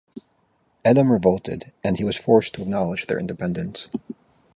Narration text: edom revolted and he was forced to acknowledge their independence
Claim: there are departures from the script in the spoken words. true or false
false